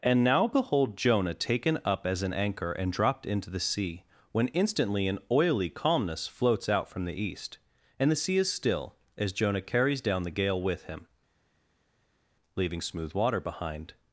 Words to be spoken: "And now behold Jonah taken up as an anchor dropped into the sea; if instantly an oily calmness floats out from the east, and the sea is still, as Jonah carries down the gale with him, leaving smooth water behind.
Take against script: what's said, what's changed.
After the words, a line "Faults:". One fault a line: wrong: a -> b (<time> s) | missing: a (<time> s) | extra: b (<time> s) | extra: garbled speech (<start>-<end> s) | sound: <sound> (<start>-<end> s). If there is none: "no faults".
"And now behold Jonah taken up as an anchor and dropped into the sea; when instantly an oily calmness floats out from the east, and the sea is still, as Jonah carries down the gale with him, leaving smooth water behind.
Faults:
extra: and (2.7 s)
wrong: if -> when (4.3 s)